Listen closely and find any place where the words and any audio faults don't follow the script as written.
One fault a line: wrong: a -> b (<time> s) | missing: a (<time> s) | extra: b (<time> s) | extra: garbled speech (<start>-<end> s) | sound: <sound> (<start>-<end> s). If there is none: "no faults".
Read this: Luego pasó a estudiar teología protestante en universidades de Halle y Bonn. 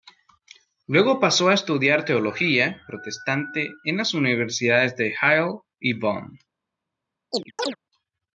extra: las (4.0 s)
sound: chirp (7.3-7.8 s)